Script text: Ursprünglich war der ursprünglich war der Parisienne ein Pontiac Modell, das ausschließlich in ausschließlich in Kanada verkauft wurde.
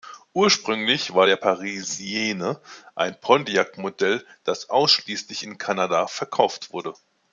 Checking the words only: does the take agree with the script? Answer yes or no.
no